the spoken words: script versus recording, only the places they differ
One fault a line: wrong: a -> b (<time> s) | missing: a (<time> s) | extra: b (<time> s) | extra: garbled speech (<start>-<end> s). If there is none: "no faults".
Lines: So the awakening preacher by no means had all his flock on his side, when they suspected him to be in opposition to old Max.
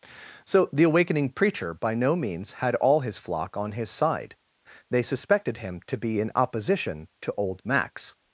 missing: when (4.3 s)